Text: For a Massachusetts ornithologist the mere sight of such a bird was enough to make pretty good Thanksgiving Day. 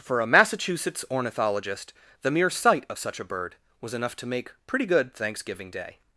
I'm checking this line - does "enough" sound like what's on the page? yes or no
yes